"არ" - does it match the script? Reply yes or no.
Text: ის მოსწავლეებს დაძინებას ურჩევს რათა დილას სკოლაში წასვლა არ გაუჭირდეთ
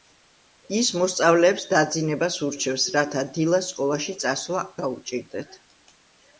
no